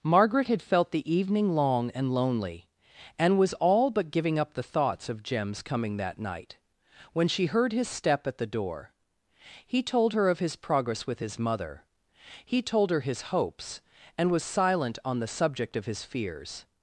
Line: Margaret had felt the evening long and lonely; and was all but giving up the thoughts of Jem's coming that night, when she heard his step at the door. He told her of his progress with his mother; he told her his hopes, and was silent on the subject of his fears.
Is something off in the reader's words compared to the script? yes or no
no